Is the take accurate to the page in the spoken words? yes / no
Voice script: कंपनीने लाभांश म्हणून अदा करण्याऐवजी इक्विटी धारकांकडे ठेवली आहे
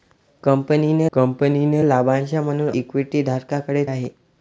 no